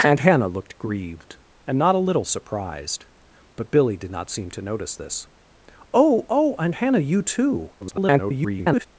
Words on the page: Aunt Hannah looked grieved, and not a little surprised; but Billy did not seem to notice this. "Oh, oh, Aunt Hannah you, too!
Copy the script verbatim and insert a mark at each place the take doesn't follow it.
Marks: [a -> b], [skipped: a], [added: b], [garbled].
Aunt Hannah looked grieved, and not a little surprised; but Billy did not seem to notice this. "Oh, oh, Aunt Hannah you, too! [garbled]